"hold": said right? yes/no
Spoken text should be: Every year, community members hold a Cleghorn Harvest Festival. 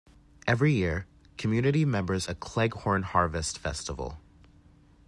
no